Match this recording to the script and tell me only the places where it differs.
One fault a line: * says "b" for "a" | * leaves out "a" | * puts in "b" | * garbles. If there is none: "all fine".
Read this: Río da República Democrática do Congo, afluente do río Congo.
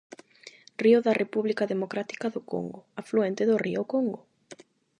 all fine